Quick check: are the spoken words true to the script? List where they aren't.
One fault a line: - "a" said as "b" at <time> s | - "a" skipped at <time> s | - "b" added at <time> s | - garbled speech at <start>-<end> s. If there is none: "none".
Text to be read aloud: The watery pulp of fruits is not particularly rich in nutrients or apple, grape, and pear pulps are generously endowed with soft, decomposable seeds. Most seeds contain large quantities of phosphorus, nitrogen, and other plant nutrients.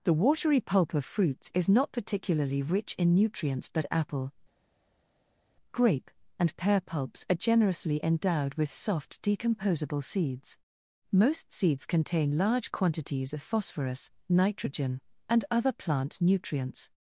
- "or" said as "but" at 3.7 s